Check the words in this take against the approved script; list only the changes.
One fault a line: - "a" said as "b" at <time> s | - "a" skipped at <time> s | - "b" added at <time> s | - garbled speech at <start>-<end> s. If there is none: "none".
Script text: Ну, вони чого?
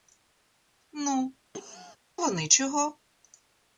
none